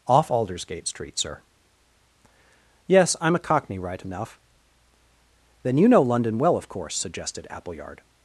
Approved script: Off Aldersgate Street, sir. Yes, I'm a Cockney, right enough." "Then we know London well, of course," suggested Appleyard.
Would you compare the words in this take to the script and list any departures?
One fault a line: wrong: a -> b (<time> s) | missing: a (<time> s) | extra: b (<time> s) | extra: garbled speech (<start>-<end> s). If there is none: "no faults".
wrong: we -> you (5.8 s)